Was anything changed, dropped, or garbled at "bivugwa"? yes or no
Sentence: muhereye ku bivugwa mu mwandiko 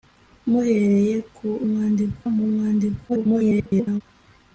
yes